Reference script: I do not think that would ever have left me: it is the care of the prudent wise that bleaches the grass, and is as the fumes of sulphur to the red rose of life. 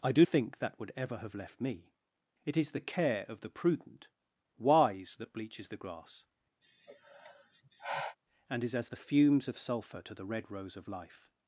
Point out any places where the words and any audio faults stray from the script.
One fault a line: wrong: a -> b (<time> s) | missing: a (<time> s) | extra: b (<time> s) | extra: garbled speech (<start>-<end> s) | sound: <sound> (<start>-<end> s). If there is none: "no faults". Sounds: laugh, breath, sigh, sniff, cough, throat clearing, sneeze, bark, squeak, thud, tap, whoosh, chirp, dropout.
missing: not (0.2 s)
sound: sigh (6.6-8.2 s)